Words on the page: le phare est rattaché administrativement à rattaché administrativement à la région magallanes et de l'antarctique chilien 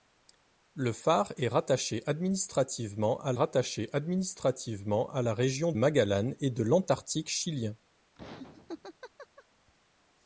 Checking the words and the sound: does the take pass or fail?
fail